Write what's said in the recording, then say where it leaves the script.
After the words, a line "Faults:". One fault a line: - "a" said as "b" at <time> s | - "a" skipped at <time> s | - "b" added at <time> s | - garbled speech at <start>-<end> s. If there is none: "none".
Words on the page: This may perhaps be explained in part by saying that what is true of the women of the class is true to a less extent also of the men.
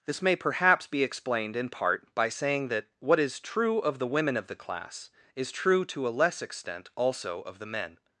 This may perhaps be explained in part by saying that what is true of the women of the class is true to a less extent also of the men.
Faults:
none